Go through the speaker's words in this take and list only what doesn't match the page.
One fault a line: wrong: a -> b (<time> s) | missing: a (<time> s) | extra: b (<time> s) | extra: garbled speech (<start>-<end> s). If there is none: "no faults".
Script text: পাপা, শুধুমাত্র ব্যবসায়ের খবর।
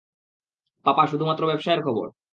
no faults